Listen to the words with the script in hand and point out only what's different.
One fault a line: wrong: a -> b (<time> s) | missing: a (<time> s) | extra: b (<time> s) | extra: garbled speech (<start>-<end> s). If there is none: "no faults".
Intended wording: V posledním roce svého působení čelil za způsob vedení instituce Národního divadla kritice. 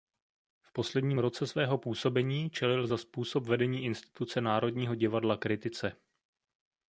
no faults